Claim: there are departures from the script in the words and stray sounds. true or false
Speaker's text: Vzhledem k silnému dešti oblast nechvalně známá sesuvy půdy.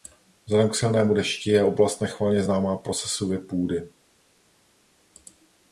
true